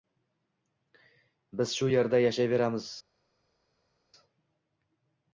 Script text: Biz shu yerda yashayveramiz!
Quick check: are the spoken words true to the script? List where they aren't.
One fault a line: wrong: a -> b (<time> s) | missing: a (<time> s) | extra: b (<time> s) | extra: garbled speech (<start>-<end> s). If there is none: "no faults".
no faults